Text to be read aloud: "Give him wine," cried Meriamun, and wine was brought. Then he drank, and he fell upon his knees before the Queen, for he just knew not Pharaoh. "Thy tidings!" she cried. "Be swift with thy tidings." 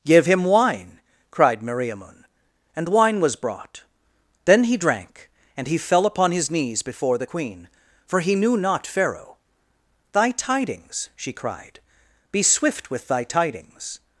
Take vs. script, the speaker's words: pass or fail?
fail